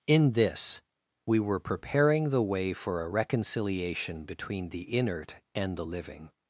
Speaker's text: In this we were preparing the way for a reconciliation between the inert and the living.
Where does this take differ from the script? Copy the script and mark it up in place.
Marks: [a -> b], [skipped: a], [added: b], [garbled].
In this we were preparing the way for a reconciliation between the inert and the living.